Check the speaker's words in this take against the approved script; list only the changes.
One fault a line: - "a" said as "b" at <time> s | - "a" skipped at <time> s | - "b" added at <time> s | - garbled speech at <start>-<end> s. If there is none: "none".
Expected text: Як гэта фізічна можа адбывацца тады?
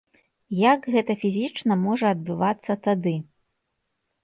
none